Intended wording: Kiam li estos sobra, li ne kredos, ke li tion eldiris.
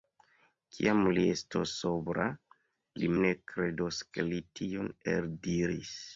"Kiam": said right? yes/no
yes